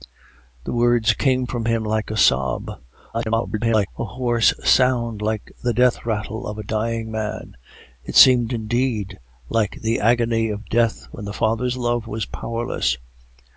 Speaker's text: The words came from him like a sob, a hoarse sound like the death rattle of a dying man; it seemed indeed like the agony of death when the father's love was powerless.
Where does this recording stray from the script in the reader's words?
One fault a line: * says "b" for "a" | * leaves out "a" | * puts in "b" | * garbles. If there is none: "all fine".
* garbles